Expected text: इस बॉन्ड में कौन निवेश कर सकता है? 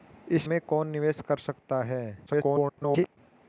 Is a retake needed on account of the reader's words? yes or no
yes